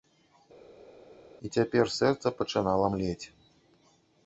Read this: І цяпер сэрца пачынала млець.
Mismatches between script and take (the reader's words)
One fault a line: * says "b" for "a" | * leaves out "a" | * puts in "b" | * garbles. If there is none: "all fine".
all fine